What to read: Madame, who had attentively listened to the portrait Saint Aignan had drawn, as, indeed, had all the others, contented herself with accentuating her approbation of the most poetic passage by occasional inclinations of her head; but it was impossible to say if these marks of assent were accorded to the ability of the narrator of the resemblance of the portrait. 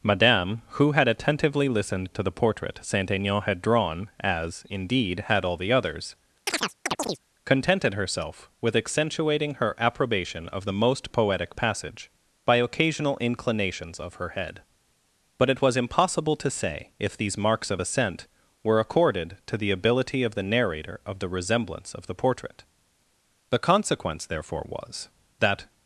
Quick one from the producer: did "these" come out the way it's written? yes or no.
yes